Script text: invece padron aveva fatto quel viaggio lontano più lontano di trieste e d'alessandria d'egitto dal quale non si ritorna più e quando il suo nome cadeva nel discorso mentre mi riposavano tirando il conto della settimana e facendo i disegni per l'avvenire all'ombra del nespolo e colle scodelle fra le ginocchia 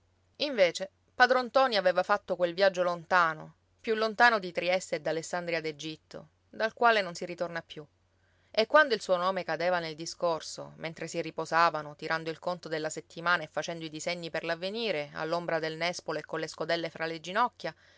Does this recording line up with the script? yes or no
no